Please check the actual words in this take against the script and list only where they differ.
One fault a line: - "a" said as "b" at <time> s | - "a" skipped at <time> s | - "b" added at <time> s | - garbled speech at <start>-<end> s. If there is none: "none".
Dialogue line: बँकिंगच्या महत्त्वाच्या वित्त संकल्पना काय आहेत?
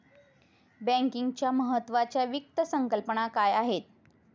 none